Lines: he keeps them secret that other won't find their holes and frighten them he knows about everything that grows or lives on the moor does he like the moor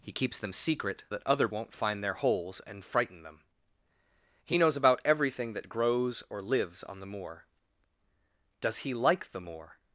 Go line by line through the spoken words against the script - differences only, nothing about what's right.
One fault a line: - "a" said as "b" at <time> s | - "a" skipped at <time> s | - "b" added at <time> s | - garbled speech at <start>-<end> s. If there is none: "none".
none